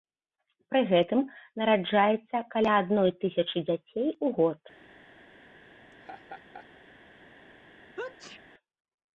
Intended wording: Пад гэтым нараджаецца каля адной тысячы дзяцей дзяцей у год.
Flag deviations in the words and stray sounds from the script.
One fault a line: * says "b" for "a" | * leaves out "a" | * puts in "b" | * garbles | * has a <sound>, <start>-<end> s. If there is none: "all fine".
* says "Пры" for "Пад"
* leaves out "дзяцей"
* has a laugh, 5.9-6.7 s
* has a sneeze, 8.0-8.4 s